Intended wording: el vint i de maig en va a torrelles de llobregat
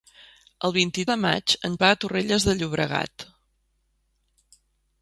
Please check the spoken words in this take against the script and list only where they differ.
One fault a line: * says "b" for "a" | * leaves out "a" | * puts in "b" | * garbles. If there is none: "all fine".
all fine